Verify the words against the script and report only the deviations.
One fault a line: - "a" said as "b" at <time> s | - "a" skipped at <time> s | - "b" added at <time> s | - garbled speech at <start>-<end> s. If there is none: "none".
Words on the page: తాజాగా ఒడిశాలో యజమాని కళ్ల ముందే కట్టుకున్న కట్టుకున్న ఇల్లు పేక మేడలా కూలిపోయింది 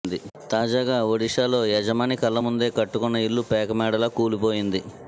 - "కట్టుకున్న" skipped at 3.2 s